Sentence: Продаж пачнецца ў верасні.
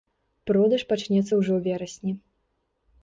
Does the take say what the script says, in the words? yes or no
no